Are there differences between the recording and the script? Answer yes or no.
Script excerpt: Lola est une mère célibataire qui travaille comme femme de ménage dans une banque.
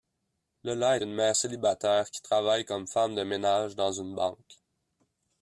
yes